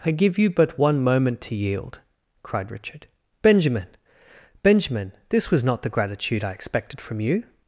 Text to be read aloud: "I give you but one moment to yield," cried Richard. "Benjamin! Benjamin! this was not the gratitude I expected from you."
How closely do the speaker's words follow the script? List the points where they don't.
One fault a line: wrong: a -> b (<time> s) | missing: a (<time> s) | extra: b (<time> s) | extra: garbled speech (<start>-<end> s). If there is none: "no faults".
no faults